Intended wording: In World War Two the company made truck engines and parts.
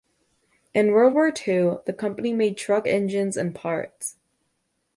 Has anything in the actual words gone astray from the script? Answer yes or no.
no